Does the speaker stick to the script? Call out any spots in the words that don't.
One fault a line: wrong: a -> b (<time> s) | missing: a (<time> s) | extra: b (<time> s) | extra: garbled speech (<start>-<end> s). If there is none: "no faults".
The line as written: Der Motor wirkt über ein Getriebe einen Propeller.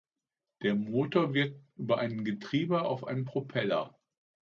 extra: auf (2.8 s)